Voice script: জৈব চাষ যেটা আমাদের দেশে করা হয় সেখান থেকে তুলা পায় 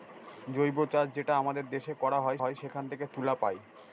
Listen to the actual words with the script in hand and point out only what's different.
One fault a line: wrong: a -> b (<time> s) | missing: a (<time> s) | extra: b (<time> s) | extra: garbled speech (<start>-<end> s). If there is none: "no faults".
extra: হয় (2.4 s)